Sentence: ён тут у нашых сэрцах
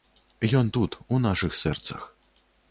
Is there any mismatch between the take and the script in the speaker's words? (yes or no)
no